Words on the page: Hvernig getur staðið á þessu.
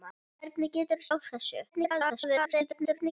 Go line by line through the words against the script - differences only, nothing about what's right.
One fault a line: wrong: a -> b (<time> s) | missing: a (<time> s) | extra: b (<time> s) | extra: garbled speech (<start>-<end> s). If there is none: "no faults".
missing: staðið (1.1 s)
extra: garbled speech (1.7-3.1 s)